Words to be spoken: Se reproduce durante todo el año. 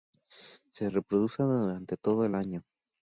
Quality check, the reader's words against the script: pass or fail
pass